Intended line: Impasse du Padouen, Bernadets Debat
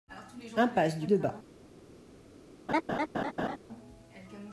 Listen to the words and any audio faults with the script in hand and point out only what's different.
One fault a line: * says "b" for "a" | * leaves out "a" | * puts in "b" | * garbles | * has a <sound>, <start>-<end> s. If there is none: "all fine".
* leaves out "Padouen Bernadets"
* has a laugh, 2.7-3.6 s